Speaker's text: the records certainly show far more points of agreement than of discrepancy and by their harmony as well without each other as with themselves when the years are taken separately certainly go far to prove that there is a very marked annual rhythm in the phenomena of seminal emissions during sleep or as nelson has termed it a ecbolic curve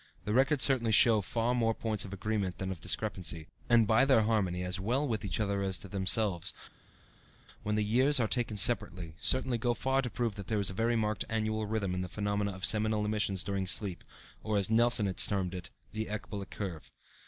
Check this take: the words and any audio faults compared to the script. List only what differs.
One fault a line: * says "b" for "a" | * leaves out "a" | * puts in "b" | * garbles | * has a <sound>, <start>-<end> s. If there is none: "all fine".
* says "with" for "without"
* says "the" for "a"